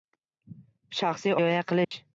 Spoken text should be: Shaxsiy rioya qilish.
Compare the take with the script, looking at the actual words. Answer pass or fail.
pass